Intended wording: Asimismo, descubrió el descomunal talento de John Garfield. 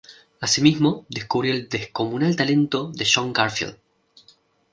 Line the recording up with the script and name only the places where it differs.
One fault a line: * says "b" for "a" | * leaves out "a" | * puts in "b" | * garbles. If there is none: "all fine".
all fine